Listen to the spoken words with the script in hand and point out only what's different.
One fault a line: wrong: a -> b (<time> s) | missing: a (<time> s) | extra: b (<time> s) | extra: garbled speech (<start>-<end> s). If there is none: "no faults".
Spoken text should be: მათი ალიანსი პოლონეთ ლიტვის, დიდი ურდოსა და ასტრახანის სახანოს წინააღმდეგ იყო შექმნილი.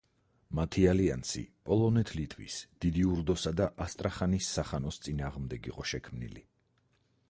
no faults